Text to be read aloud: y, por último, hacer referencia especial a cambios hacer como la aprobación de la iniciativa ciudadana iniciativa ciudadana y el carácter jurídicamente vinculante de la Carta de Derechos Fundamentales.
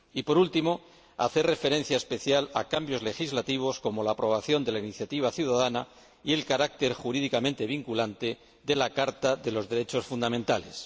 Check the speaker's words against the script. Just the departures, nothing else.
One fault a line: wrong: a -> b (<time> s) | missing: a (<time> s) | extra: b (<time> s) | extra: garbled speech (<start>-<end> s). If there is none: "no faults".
wrong: hacer -> legislativos (3.0 s)
missing: iniciativa ciudadana (5.9 s)
extra: los (9.5 s)